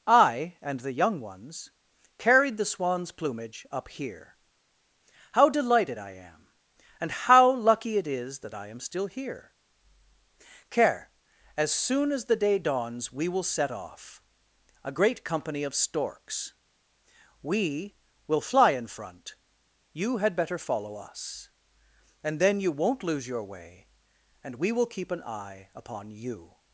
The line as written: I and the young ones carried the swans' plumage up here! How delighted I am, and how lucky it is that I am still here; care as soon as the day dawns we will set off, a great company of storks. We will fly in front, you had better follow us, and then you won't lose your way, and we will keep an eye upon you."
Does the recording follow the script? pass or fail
pass